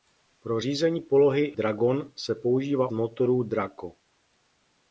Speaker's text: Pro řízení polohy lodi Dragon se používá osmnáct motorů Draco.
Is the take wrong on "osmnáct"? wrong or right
wrong